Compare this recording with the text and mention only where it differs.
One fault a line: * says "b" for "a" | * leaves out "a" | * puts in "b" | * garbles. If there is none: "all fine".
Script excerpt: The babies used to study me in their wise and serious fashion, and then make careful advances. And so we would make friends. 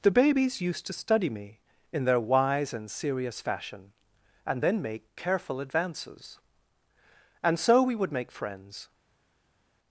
all fine